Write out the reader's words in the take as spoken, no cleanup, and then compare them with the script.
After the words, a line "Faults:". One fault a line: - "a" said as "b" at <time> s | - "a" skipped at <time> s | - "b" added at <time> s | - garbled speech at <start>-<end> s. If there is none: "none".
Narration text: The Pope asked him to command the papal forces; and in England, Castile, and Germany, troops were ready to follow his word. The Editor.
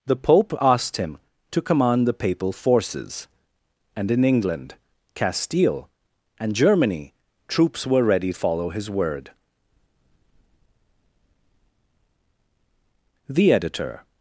The Pope asked him to command the papal forces; and in England, Castile, and Germany, troops were ready follow his word. The Editor.
Faults:
- "to" skipped at 8.3 s